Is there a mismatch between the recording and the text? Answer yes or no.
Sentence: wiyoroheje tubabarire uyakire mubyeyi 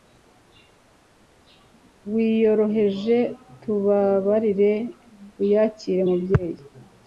no